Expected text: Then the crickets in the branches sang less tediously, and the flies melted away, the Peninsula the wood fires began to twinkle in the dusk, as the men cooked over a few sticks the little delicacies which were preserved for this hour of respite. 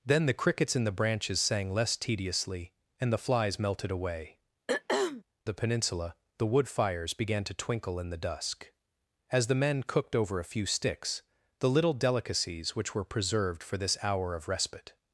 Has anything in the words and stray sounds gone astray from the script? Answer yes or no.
yes